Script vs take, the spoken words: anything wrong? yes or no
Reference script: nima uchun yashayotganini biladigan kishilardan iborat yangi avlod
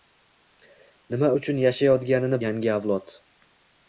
yes